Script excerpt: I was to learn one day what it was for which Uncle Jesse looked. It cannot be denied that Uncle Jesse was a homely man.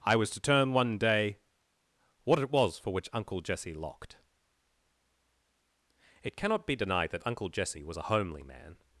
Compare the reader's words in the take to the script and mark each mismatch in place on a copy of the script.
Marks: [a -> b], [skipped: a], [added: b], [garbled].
I was to [learn -> turn] one day what it was for which Uncle Jesse [looked. -> locked] It cannot be denied that Uncle Jesse was a homely man.